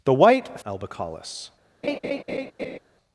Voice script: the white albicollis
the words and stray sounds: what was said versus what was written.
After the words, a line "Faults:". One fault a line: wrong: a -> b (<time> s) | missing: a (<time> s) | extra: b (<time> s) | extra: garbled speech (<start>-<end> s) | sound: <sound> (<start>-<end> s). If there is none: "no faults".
the white albicollis
Faults:
sound: laugh (1.8-2.8 s)